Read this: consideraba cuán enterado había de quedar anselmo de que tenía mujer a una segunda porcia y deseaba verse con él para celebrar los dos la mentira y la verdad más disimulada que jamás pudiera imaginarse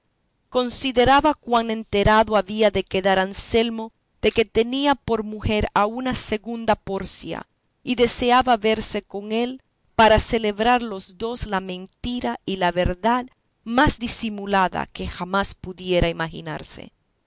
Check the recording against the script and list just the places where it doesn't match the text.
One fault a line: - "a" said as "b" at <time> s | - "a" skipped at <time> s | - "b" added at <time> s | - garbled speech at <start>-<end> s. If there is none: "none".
- "por" added at 5.0 s